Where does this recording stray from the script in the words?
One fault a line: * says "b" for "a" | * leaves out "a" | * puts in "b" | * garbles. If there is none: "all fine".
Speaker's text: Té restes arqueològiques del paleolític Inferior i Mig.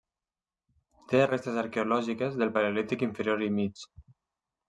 all fine